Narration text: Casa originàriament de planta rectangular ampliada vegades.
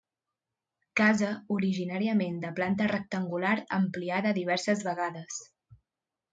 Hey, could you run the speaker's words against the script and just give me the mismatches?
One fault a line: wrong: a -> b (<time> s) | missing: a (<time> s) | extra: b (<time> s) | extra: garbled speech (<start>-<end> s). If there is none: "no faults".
extra: diverses (4.4 s)